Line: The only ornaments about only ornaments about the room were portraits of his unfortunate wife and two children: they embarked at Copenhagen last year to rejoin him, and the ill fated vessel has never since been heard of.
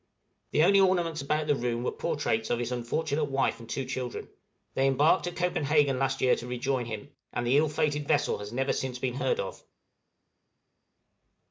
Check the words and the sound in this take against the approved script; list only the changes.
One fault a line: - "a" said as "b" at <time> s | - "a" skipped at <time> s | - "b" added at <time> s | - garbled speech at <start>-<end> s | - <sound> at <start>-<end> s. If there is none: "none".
- "only ornaments about" skipped at 1.5 s